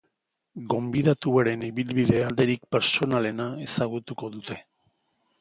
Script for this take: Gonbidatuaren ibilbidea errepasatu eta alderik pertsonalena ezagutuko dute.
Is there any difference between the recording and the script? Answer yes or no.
yes